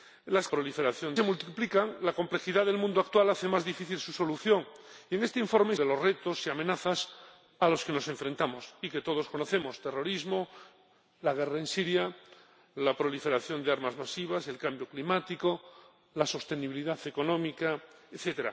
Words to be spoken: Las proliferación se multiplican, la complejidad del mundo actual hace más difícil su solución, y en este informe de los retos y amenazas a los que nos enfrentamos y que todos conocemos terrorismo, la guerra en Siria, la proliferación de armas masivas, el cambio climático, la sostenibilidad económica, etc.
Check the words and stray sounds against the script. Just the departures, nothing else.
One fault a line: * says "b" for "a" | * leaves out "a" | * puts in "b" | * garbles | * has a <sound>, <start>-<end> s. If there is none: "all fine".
all fine